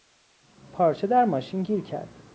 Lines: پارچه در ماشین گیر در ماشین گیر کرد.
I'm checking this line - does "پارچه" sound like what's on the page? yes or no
yes